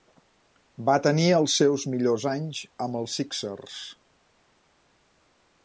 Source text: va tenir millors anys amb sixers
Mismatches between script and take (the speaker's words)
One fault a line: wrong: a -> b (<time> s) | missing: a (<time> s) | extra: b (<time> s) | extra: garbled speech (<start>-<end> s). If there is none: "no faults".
extra: els seus (1.4 s)
extra: els (3.0 s)